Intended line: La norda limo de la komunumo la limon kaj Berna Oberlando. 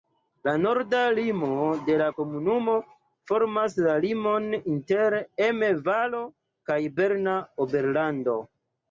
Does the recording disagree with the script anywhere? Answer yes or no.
yes